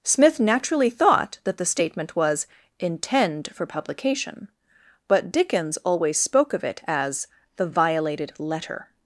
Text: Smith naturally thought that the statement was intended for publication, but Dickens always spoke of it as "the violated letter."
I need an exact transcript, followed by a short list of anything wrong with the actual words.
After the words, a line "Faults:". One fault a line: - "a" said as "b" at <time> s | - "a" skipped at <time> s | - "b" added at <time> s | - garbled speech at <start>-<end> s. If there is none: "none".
Smith naturally thought that the statement was intend for publication, but Dickens always spoke of it as "the violated letter."
Faults:
- "intended" said as "intend" at 2.8 s